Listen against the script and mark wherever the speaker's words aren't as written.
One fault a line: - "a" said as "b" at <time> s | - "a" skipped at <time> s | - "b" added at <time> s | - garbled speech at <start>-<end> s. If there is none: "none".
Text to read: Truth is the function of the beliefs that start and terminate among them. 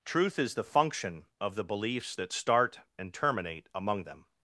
none